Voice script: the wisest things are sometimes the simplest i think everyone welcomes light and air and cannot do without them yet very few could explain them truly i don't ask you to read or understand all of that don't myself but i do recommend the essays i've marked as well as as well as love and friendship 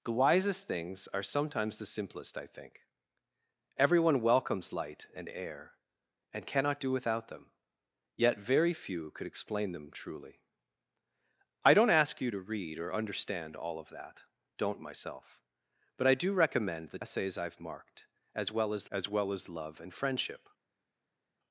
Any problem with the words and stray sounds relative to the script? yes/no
no